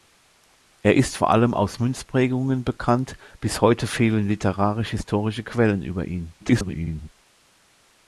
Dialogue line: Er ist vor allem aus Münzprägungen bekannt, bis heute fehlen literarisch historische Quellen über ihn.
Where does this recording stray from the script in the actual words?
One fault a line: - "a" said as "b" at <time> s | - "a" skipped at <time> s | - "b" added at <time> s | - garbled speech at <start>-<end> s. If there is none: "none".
- garbled speech at 6.4-7.1 s